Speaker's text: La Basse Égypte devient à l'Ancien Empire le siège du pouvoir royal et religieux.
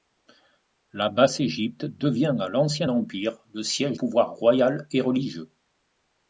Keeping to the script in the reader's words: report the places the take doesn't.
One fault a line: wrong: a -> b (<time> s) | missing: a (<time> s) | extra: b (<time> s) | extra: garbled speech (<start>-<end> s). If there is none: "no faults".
missing: du (4.0 s)